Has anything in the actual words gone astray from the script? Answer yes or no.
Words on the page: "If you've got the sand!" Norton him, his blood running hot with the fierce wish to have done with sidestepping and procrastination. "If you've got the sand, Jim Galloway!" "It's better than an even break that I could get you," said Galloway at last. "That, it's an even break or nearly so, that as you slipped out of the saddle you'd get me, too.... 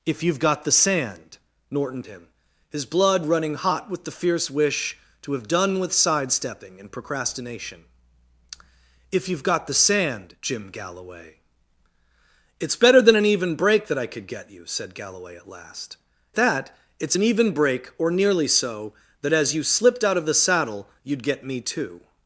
no